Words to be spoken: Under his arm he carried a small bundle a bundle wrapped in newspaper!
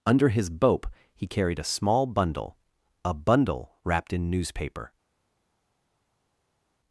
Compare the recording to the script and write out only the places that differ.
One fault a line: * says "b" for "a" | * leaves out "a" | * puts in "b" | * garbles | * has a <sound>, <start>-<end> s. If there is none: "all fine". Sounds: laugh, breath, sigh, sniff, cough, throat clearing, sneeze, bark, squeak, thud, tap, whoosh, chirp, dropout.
* says "bope" for "arm"